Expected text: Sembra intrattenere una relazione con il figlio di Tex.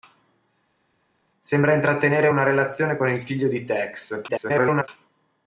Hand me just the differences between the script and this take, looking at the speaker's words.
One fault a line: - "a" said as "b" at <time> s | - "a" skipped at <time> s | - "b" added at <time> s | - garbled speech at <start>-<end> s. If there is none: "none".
- garbled speech at 4.3-4.9 s